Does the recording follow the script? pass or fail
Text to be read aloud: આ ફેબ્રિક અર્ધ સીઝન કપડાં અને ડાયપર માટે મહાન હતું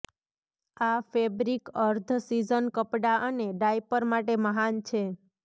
fail